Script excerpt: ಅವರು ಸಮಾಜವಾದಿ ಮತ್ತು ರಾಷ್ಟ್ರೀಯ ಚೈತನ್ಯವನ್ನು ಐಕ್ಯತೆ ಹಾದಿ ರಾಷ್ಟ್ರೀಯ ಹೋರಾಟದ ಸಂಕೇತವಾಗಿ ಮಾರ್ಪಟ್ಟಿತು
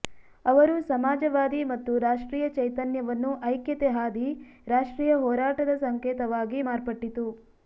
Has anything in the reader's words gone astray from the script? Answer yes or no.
no